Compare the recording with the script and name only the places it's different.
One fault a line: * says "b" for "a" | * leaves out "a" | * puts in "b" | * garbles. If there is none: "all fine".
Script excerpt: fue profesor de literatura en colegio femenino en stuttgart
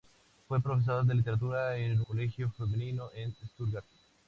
all fine